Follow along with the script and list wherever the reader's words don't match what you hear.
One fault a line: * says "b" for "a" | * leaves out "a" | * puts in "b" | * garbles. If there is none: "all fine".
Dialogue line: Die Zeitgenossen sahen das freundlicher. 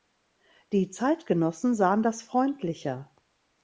all fine